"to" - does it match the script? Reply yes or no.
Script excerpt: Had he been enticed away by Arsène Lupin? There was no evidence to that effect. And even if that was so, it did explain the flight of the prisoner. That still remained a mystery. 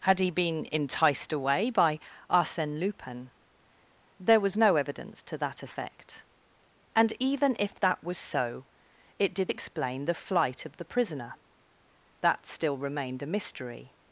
yes